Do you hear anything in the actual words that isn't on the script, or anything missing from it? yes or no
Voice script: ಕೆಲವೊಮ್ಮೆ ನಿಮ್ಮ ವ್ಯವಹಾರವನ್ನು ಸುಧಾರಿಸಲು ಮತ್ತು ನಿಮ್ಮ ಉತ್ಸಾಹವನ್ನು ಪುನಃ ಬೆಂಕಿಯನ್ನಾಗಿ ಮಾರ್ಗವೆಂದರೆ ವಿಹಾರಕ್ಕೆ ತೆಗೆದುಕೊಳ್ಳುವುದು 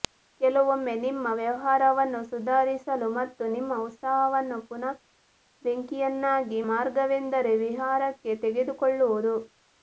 no